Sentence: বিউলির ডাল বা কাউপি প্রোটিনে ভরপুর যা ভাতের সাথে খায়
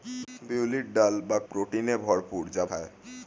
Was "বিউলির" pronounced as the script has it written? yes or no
yes